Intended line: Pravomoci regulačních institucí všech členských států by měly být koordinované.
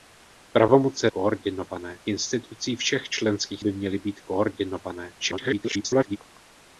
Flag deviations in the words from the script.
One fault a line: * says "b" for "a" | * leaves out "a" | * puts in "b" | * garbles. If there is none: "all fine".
* says "koordinované" for "regulačních"
* leaves out "států"
* garbles